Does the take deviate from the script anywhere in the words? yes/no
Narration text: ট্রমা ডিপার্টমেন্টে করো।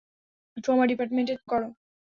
no